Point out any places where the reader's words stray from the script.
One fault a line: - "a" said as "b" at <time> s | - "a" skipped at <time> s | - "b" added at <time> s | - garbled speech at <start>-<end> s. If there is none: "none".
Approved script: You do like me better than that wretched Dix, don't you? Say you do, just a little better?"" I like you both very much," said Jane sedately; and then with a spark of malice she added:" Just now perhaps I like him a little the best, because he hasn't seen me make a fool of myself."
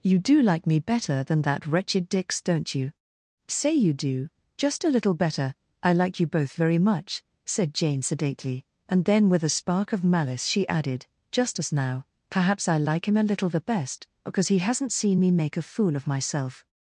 - "as" added at 11.6 s